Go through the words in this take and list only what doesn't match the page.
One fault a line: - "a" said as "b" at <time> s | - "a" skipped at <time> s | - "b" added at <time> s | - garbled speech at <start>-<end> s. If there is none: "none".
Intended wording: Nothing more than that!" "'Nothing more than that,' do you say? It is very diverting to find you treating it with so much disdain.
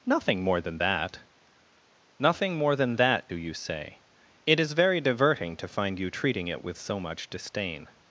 none